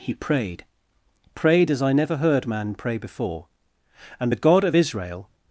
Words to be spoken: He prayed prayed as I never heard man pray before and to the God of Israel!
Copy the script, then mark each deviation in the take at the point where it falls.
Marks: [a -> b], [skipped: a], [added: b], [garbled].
He prayed prayed as I never heard man pray before and [skipped: to] the God of Israel!